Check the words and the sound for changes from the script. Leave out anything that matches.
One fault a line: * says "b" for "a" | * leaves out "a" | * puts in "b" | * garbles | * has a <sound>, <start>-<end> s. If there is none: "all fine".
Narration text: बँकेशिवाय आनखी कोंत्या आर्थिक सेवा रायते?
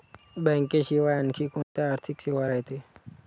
* has a dropout, 1.6-1.8 s